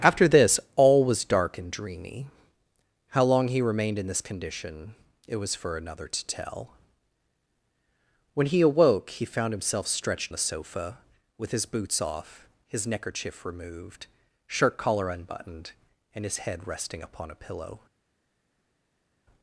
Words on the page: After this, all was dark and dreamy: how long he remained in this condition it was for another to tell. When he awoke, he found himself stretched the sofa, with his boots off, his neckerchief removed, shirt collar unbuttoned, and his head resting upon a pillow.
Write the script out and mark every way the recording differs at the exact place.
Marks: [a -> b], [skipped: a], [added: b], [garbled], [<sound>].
After this, all was dark and dreamy: how long he remained in this condition it was for another to tell. When he awoke, he found himself stretched the sofa, with his boots off, his neckerchief removed, shirt collar unbuttoned, and his head resting upon a pillow.